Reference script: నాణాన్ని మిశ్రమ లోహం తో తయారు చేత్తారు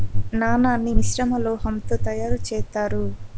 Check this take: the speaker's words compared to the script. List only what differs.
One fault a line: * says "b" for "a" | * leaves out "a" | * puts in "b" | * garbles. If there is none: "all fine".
all fine